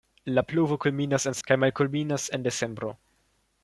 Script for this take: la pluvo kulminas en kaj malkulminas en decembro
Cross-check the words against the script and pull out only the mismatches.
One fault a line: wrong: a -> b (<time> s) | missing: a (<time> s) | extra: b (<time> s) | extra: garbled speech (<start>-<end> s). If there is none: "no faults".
no faults